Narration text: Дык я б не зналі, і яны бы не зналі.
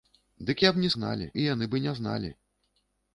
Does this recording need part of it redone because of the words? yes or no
no